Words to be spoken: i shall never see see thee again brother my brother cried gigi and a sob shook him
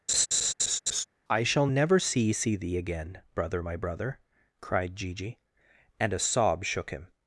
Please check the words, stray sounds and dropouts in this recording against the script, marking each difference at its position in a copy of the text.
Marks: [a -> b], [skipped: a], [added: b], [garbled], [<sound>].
[laugh] i shall never see see thee again brother my brother cried gigi and a sob shook him